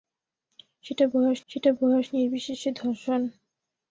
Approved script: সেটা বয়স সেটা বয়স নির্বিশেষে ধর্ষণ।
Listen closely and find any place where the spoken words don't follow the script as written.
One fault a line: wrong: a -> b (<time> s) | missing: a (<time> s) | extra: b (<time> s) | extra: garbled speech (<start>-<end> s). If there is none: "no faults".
no faults